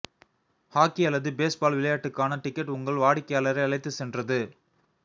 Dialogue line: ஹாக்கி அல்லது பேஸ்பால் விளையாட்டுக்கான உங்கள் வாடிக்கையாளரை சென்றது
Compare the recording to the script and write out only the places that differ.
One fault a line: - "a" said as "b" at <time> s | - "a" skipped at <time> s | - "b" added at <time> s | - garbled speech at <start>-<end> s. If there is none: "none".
- "டிக்கெட்" added at 2.4 s
- "அழைத்துச்" added at 3.6 s